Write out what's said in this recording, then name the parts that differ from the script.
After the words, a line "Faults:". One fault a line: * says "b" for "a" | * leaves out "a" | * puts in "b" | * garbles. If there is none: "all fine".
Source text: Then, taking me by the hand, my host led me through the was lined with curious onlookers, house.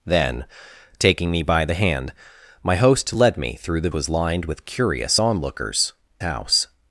Then, taking me by the hand, my host led me through the was lined with curious onlookers, house.
Faults:
all fine